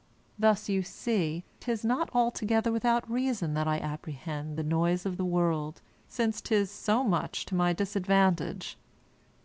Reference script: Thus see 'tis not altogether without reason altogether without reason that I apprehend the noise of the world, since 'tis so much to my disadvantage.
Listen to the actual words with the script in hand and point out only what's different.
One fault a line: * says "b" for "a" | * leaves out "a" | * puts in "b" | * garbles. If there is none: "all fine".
* puts in "you"
* leaves out "altogether without reason"